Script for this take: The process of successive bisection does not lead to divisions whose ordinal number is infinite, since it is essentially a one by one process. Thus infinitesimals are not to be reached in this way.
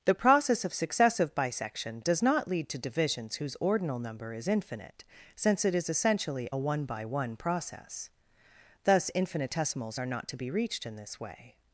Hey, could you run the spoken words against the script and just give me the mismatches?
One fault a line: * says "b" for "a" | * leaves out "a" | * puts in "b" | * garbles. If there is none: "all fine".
all fine